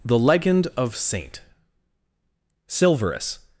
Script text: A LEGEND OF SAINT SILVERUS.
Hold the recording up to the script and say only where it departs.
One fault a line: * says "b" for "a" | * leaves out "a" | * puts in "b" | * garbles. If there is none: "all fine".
* says "THE" for "A"